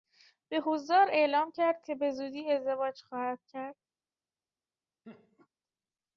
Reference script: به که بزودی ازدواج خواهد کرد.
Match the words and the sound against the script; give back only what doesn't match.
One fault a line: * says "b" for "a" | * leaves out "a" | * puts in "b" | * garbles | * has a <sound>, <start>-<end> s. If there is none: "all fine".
* puts in "حضار اعلام کرد"
* has a laugh, 5.0-5.5 s